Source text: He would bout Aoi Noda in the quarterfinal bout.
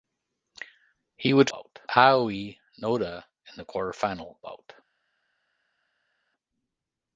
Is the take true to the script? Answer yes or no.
yes